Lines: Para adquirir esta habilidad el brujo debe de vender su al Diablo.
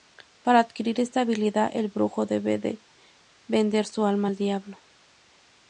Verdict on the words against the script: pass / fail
fail